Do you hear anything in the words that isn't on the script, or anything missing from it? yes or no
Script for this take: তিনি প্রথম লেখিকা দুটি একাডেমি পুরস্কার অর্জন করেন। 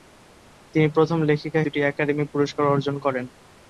no